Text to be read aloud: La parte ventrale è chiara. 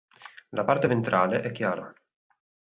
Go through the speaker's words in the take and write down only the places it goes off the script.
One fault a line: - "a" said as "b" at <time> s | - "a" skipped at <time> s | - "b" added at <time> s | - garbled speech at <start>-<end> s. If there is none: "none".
none